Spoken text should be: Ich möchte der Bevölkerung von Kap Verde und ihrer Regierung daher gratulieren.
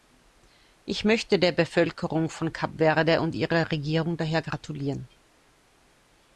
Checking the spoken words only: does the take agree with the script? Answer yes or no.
yes